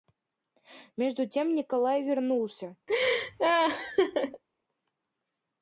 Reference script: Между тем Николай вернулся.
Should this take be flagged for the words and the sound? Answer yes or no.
yes